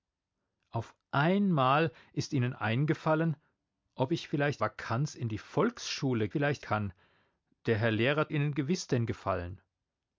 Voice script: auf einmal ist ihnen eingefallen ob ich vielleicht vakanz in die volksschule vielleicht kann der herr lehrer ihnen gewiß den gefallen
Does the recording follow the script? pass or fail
pass